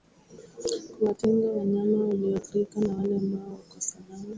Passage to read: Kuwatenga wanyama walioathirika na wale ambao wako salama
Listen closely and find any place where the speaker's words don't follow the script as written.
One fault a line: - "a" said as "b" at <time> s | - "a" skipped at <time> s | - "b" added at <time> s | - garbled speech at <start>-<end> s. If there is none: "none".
none